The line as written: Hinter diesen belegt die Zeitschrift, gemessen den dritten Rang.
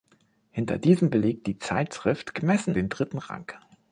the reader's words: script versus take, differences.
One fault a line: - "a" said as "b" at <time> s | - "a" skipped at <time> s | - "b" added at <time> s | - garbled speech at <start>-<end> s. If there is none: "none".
none